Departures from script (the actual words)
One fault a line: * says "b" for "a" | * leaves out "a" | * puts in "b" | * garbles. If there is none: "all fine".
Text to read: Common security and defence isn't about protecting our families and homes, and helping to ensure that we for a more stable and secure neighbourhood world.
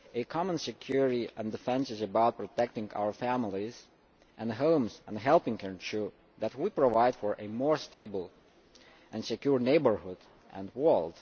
* says "is" for "isn't"
* puts in "provide"
* puts in "and"